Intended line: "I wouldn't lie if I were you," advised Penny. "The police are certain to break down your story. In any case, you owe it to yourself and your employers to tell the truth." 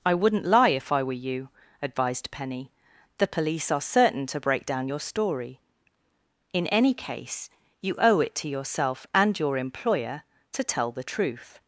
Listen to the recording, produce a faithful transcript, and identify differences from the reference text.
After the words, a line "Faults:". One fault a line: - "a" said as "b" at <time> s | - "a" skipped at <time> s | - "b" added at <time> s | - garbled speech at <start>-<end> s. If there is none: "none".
"I wouldn't lie if I were you," advised Penny. "The police are certain to break down your story. In any case, you owe it to yourself and your employer to tell the truth."
Faults:
- "employers" said as "employer" at 9.6 s